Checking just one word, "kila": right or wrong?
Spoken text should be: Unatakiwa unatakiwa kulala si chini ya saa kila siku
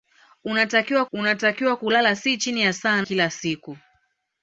right